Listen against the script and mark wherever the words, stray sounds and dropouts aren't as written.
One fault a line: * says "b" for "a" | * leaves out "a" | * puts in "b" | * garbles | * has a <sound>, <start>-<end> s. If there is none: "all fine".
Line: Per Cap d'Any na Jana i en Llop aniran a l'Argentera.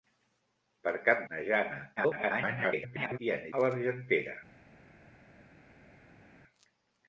* leaves out "d'Any"
* garbles
* leaves out "Llop aniran"